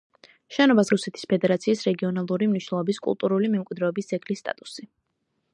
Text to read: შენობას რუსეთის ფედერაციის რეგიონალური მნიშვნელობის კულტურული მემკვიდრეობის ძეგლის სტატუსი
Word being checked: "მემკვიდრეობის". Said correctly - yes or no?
yes